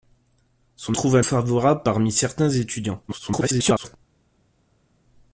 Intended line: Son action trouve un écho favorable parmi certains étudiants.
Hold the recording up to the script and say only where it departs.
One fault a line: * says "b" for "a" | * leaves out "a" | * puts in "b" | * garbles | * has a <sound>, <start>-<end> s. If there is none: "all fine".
* leaves out "action"
* leaves out "écho"
* garbles